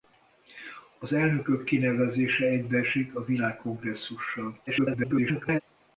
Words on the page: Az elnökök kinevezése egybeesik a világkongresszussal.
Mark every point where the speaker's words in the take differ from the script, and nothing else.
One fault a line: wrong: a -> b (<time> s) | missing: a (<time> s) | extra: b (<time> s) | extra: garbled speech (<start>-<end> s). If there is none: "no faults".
extra: garbled speech (4.7-5.6 s)